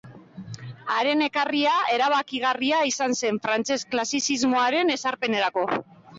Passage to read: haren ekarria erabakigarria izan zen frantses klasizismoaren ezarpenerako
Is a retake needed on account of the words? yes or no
no